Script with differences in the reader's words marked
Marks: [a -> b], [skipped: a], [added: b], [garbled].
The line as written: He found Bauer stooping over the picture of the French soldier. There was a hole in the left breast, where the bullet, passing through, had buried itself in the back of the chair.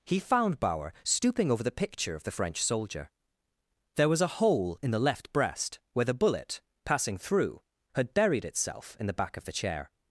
He found Bauer stooping over the picture of the French soldier. There was a hole in the left breast, where the bullet, passing through, had buried itself in the back of the chair.